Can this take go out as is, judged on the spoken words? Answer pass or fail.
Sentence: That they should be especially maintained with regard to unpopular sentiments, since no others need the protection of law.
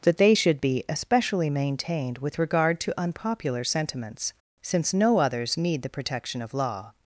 pass